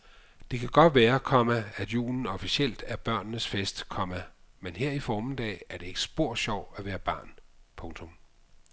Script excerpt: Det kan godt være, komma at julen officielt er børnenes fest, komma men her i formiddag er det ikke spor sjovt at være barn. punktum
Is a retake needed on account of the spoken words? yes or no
no